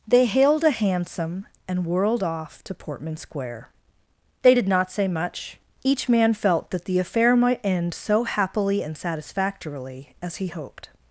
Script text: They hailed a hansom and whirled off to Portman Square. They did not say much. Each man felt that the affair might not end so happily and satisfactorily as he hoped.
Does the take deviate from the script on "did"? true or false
false